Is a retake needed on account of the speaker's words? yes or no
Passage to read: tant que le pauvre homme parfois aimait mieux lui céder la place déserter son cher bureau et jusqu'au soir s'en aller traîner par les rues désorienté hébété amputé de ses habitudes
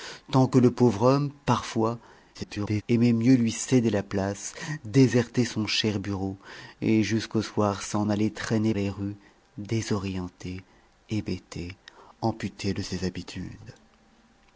yes